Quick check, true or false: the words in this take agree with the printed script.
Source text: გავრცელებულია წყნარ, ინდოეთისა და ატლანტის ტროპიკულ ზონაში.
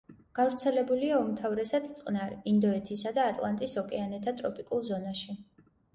false